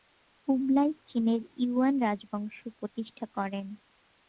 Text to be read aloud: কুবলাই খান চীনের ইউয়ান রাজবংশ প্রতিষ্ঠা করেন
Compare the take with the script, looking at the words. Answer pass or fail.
fail